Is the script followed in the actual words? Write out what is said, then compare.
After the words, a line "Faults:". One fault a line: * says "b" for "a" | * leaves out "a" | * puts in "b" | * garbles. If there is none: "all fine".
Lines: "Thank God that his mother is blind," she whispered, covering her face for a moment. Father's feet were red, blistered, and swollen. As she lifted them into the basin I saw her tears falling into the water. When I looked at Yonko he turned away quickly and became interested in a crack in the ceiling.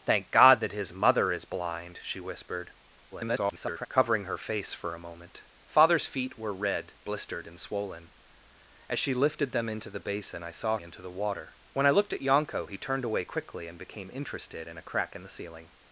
"Thank God that his mother is blind," she whispered, [garbled] covering her face for a moment. Father's feet were red, blistered, and swollen. As she lifted them into the basin I saw into the water. When I looked at Yonko he turned away quickly and became interested in a crack in the ceiling.
Faults:
* garbles
* leaves out "her tears falling"